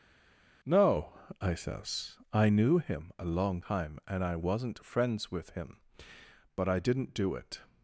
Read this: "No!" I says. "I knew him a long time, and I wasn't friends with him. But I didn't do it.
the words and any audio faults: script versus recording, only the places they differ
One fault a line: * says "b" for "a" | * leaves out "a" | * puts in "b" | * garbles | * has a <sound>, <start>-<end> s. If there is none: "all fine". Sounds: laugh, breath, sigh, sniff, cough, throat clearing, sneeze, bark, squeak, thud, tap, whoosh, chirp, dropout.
all fine